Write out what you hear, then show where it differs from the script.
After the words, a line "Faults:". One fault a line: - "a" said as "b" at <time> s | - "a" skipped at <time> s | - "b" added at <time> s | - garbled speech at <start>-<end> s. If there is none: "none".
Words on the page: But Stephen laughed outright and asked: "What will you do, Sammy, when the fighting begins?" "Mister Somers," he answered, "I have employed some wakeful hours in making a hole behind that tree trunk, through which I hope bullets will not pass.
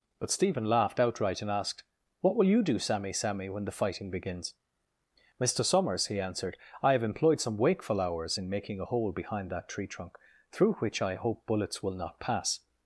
But Stephen laughed outright and asked: "What will you do, Sammy Sammy, when the fighting begins?" "Mister Somers," he answered, "I have employed some wakeful hours in making a hole behind that tree trunk, through which I hope bullets will not pass.
Faults:
- "Sammy" added at 3.1 s